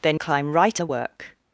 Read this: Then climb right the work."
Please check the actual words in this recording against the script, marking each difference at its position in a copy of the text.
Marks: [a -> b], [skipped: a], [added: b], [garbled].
Then climb right the work."